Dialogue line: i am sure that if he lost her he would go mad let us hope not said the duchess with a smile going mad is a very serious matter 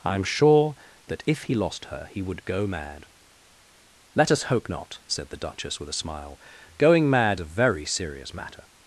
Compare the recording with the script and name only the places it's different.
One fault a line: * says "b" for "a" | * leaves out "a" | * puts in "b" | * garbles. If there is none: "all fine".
* leaves out "is"